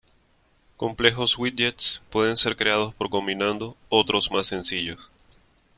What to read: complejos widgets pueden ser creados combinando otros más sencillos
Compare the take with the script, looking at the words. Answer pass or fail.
fail